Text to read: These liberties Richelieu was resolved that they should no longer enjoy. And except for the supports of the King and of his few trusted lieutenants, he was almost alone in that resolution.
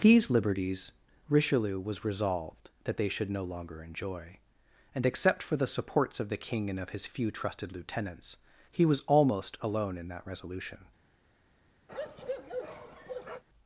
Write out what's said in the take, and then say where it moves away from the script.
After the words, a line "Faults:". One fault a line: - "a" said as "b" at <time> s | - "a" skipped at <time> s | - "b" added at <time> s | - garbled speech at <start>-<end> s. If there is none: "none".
These liberties Richelieu was resolved that they should no longer enjoy. And except for the supports of the King and of his few trusted lieutenants, he was almost alone in that resolution.
Faults:
none